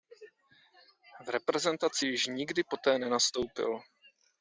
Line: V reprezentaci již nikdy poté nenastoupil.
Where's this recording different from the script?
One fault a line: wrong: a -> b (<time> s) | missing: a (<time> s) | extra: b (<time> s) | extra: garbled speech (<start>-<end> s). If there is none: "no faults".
no faults